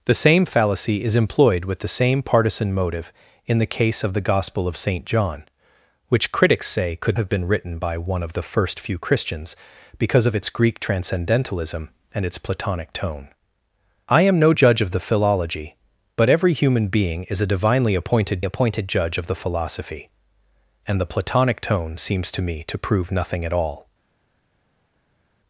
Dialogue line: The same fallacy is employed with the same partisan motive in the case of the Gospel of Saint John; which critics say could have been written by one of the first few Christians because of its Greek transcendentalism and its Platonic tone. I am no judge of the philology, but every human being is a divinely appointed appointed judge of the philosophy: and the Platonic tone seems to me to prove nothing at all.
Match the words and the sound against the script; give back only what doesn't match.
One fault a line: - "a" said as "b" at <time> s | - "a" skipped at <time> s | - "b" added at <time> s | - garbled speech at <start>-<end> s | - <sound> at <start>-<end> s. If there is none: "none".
none